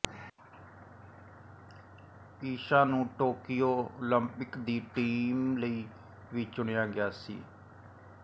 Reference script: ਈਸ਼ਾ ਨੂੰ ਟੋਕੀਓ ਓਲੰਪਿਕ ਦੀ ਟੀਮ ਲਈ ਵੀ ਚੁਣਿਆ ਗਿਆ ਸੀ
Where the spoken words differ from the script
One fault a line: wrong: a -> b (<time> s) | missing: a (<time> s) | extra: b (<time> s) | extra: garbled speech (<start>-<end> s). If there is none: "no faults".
no faults